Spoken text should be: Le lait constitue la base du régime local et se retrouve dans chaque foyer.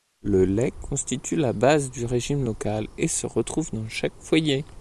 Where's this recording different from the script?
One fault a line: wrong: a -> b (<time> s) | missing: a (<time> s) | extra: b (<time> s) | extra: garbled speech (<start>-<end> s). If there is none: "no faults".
no faults